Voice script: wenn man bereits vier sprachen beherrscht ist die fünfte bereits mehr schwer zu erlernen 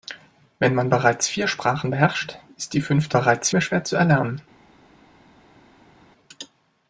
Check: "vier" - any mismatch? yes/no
no